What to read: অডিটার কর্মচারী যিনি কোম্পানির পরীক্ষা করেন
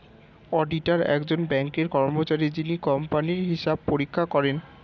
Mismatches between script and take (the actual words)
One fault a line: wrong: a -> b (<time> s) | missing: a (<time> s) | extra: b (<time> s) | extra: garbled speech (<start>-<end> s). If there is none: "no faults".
extra: একজন ব্যাঙ্কের (1.1 s)
extra: হিসাব (3.5 s)